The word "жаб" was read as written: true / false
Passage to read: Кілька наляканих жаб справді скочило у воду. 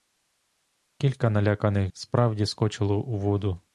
false